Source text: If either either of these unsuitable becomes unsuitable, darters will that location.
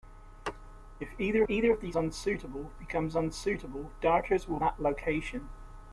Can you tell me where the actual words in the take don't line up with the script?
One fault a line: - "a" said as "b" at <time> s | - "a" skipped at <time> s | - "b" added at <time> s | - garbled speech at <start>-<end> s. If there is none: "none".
none